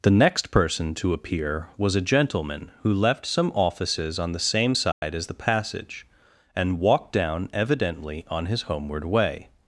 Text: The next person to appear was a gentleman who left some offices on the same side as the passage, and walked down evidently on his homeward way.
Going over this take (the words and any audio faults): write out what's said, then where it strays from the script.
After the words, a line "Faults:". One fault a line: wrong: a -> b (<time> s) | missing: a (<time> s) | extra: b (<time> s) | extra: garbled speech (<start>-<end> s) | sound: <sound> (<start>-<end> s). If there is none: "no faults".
The next person to appear was a gentleman who left some offices on the same side as the passage, and walked down evidently on his homeward way.
Faults:
sound: dropout (4.9-5.0 s)